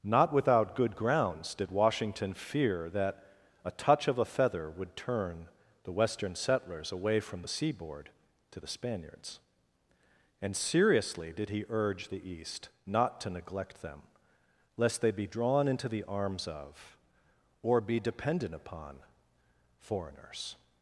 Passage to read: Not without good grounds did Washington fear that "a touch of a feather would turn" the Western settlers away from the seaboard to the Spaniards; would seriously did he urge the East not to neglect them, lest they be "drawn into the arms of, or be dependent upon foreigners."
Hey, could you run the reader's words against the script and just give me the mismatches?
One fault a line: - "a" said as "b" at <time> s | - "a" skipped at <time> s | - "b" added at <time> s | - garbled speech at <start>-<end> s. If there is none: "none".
- "would" said as "and" at 10.4 s